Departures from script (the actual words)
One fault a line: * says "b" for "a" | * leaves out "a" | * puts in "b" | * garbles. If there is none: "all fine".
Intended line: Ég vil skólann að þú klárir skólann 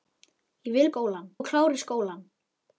all fine